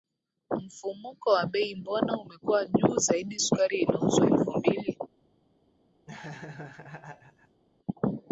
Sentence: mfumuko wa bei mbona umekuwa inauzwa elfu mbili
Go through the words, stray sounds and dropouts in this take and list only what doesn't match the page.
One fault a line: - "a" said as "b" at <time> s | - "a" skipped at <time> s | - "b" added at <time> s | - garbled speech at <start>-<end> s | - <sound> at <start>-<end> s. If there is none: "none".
- "juu zaidi sukari" added at 2.6 s
- laugh at 6.1-7.6 s